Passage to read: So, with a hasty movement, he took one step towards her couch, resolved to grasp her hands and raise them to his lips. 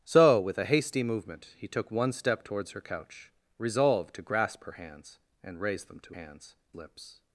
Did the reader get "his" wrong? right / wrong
wrong